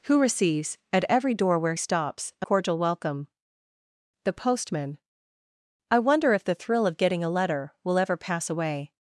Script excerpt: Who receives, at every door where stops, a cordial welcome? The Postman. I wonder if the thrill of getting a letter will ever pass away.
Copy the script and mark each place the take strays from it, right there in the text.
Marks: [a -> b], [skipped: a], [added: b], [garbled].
Who receives, at every door where stops, a cordial welcome? The Postman. I wonder if the thrill of getting a letter will ever pass away.